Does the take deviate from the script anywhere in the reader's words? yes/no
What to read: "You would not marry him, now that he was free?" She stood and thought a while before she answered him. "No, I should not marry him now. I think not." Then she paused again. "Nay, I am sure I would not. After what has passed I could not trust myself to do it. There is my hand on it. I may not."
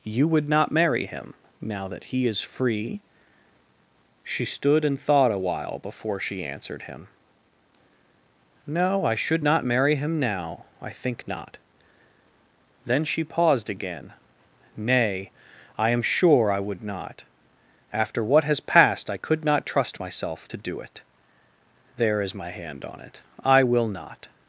yes